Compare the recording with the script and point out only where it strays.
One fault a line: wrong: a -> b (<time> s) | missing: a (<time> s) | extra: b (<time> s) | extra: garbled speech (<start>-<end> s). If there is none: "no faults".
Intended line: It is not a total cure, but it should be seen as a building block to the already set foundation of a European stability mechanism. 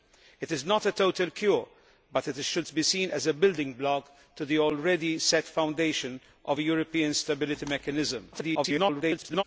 extra: garbled speech (8.3-9.4 s)